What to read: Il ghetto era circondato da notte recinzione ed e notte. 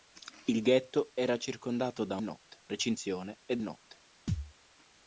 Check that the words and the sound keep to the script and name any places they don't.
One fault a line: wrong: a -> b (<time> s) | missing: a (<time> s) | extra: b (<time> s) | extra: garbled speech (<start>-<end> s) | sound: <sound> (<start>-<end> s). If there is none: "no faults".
sound: thud (4.3-4.5 s)